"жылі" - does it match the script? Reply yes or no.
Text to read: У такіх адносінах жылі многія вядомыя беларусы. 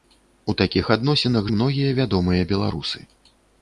no